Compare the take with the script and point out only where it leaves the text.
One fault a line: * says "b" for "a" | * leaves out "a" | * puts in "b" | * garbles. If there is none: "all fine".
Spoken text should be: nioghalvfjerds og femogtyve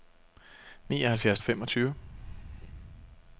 all fine